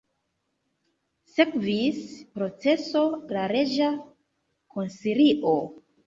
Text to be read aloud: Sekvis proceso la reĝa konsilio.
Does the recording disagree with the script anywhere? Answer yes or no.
no